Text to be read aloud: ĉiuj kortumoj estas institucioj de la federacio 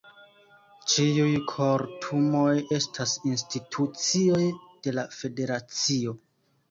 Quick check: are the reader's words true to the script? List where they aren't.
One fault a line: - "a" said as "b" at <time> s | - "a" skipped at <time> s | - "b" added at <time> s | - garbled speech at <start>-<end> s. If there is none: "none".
none